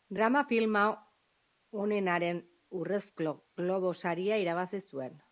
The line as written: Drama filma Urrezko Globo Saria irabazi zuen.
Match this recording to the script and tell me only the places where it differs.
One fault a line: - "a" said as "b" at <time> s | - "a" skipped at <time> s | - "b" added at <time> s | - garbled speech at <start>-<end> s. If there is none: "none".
- "onenaren" added at 1.7 s